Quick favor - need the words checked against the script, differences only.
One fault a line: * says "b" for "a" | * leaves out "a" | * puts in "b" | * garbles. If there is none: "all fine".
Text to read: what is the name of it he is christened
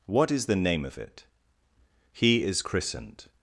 all fine